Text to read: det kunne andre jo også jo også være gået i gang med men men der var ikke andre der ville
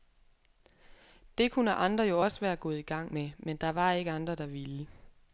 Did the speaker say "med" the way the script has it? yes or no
yes